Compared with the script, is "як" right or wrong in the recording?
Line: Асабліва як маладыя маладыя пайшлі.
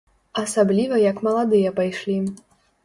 right